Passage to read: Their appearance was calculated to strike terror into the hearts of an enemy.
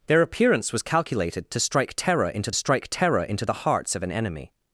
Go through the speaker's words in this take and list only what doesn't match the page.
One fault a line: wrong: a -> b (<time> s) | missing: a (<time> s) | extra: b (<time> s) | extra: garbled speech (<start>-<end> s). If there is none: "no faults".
extra: strike terror into (2.5 s)